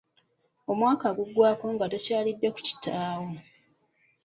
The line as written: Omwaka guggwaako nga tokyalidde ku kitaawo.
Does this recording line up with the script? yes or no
yes